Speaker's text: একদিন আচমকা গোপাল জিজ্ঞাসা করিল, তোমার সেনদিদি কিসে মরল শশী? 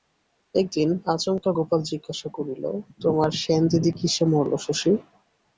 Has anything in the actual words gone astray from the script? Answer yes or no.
no